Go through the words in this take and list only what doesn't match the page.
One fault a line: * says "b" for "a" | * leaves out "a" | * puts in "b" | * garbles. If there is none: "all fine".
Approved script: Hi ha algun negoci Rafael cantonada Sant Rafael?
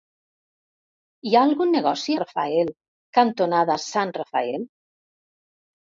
all fine